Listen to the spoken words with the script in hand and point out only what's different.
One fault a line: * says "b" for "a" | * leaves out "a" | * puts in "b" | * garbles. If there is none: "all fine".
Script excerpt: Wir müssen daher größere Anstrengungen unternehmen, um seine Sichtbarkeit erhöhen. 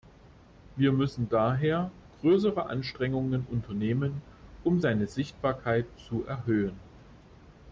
* puts in "zu"